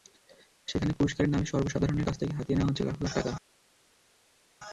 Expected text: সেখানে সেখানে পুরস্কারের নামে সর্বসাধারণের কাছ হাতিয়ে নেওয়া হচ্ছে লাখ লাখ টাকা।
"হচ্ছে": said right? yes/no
yes